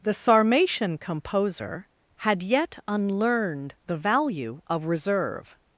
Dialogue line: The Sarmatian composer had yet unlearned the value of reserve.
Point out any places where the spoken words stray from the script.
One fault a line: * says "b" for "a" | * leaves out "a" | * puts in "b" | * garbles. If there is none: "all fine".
all fine